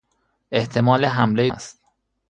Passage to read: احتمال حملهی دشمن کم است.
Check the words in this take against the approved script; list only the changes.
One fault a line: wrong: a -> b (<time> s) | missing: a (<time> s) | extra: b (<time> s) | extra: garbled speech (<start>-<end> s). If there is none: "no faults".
missing: دشمن کم (1.5 s)